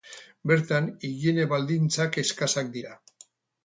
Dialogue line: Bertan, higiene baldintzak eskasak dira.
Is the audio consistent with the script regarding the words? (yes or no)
yes